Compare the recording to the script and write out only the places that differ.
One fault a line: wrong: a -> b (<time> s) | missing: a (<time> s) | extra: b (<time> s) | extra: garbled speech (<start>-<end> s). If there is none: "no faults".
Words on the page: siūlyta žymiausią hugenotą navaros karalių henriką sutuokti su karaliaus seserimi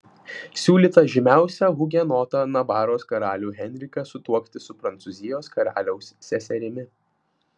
extra: prancūzijos (4.9 s)